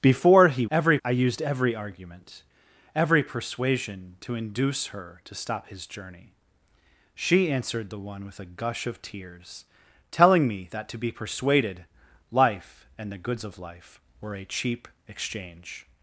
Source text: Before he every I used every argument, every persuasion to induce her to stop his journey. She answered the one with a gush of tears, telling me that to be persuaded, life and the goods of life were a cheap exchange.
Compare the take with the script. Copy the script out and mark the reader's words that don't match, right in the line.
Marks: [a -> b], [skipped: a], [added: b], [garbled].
Before he every I used every argument, every persuasion to induce her to stop his journey. She answered the one with a gush of tears, telling me that to be persuaded, life and the goods of life were a cheap exchange.